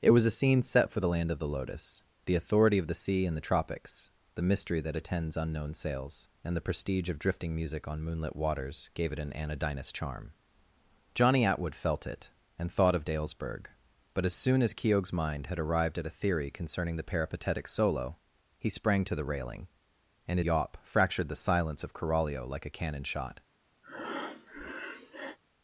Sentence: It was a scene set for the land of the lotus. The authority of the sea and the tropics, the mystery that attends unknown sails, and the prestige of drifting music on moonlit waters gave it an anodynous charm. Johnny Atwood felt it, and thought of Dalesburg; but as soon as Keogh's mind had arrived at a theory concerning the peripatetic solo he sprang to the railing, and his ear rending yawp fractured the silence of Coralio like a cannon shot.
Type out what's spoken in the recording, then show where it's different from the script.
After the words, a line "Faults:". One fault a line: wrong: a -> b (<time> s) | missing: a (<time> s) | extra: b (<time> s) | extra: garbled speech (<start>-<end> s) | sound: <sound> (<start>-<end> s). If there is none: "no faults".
It was a scene set for the land of the lotus. The authority of the sea and the tropics, the mystery that attends unknown sails, and the prestige of drifting music on moonlit waters gave it an anodynous charm. Johnny Atwood felt it, and thought of Dalesburg; but as soon as Keogh's mind had arrived at a theory concerning the peripatetic solo he sprang to the railing, and yawp fractured the silence of Coralio like a cannon shot.
Faults:
missing: his ear rending (20.4 s)
sound: breath (23.8-25.4 s)